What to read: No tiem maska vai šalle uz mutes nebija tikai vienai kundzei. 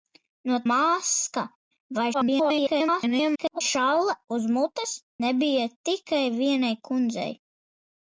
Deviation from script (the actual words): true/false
true